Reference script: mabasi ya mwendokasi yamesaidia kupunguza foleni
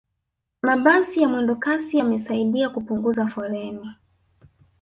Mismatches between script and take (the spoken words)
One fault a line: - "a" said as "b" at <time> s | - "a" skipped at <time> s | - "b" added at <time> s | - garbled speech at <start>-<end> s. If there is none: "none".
none